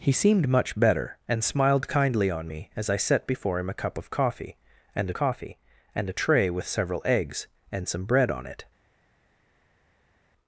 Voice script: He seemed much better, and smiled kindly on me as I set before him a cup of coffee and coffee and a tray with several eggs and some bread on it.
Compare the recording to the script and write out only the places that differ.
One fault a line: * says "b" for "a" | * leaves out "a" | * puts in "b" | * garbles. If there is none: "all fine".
all fine